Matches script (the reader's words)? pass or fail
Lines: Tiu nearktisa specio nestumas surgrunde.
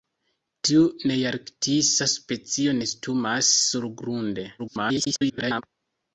fail